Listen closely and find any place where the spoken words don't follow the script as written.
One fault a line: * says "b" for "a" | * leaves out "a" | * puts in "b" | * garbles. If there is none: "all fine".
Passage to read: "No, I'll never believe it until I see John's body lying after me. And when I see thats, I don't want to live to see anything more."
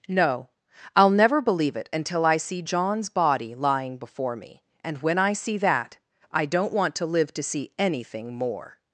* says "before" for "after"
* says "that" for "thats"